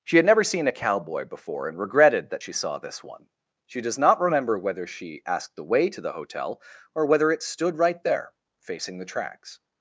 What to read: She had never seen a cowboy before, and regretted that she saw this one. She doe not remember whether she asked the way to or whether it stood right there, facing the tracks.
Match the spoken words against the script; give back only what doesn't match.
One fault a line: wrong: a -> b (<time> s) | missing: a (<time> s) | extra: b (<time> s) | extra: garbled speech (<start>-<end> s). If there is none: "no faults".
wrong: doe -> does (3.8 s)
extra: the hotel (6.0 s)